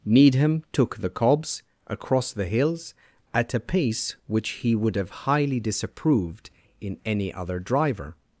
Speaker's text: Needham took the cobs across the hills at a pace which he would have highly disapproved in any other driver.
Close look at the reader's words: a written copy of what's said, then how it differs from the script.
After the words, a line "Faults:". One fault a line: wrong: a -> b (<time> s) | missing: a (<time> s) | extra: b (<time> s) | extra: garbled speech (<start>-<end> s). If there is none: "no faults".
Needham took the cobs across the hills at a pace which he would have highly disapproved in any other driver.
Faults:
no faults